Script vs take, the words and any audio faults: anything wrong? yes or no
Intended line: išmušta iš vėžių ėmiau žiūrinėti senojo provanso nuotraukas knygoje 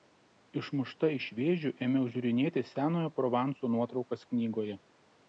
no